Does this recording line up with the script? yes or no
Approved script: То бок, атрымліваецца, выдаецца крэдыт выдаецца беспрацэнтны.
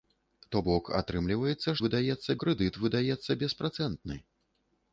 yes